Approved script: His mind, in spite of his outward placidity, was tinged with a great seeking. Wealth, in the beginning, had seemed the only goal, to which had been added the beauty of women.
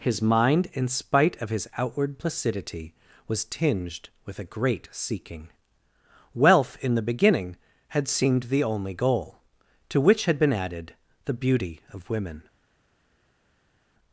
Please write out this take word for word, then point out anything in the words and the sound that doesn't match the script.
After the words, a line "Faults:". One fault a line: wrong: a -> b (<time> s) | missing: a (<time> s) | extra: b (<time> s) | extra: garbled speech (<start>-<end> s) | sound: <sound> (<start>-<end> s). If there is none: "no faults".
His mind, in spite of his outward placidity, was tinged with a great seeking. Wealth, in the beginning, had seemed the only goal, to which had been added the beauty of women.
Faults:
no faults